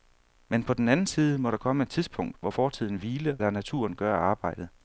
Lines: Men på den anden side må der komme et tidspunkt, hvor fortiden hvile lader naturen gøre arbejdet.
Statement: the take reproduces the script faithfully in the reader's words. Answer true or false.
true